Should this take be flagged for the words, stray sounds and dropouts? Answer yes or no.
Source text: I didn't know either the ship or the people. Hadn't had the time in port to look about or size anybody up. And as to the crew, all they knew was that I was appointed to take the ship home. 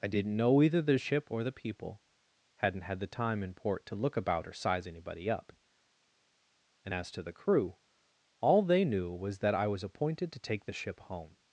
no